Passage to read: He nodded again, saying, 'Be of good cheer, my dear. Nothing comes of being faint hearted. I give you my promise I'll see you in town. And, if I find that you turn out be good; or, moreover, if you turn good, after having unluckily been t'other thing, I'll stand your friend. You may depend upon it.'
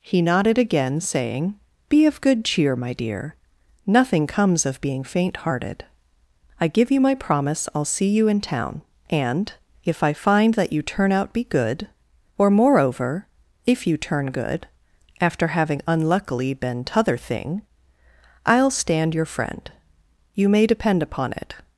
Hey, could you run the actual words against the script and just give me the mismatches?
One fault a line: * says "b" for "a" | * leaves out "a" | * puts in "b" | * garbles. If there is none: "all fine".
all fine